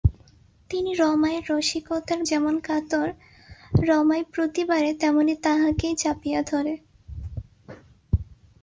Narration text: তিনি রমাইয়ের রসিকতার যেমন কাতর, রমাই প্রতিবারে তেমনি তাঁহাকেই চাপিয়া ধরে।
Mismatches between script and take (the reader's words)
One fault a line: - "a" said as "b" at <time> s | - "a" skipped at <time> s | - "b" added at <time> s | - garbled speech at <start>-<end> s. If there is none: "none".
none